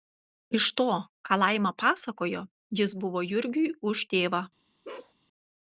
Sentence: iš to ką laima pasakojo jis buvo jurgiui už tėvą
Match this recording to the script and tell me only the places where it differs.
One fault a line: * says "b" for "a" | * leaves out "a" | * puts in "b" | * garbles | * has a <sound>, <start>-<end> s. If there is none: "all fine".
* has a bark, 4.8-5.1 s